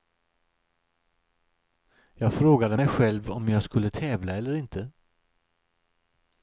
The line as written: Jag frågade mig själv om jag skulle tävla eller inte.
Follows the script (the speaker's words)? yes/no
yes